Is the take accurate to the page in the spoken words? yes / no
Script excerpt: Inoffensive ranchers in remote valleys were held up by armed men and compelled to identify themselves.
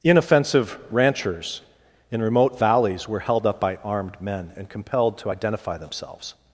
yes